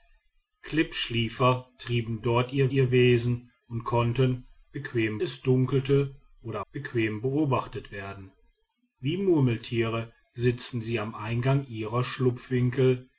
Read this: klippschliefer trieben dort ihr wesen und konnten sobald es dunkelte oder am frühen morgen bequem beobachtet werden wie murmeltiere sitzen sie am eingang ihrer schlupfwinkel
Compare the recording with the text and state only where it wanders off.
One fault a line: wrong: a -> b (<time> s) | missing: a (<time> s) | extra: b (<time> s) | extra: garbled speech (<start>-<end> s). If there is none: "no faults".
extra: ihr (2.7 s)
wrong: sobald -> bequem (4.7 s)
missing: am frühen morgen (6.6 s)